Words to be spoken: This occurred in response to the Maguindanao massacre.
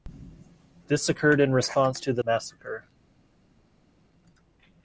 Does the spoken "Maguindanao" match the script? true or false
false